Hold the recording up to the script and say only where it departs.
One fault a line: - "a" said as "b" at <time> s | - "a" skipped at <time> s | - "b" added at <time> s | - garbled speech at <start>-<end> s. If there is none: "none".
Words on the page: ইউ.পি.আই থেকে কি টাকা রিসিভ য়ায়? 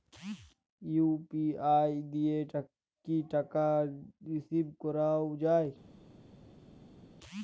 - "থেকে" said as "দিয়ে" at 2.1 s
- "করাও" added at 4.8 s